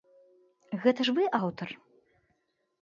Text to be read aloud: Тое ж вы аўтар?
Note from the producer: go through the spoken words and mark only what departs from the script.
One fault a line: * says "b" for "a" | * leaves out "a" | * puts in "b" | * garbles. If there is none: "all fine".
* says "Гэта" for "Тое"